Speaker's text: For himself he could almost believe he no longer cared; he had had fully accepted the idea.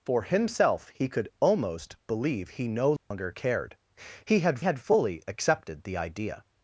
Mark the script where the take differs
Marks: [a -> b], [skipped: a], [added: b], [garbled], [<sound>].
For himself he could almost believe he no longer [dropout] cared; he had had fully accepted the idea.